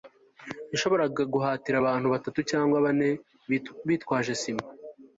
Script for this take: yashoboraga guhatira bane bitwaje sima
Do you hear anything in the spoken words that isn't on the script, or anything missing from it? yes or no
yes